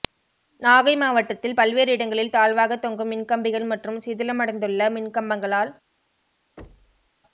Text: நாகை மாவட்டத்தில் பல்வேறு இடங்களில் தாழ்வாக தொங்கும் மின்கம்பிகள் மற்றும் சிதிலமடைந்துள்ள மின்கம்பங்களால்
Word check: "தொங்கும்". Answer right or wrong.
right